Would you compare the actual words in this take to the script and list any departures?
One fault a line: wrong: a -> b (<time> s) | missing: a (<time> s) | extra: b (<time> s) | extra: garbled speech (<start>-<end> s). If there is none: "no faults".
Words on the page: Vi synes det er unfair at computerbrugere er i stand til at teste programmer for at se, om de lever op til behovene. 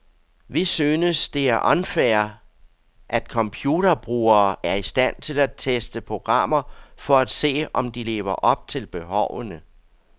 no faults